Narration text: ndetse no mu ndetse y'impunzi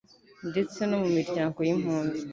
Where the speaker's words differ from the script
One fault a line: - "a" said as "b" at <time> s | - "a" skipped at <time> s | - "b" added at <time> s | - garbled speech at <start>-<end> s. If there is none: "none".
- "ndetse" said as "miryango" at 1.2 s